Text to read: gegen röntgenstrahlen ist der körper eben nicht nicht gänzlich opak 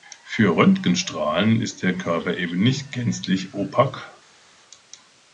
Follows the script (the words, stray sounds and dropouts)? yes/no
no